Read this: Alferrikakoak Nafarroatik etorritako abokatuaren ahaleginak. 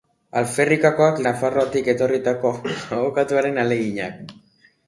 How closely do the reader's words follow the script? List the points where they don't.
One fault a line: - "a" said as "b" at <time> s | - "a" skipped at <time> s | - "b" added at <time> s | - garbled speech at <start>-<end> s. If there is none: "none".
none